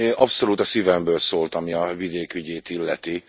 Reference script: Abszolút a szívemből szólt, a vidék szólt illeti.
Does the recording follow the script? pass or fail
fail